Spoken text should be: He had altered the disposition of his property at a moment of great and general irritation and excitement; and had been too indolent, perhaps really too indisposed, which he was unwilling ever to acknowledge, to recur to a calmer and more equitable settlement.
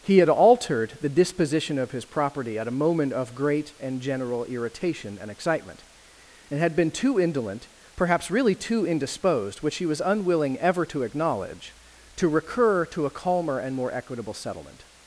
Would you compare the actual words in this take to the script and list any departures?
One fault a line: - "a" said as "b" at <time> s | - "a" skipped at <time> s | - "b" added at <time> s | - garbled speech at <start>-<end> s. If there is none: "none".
none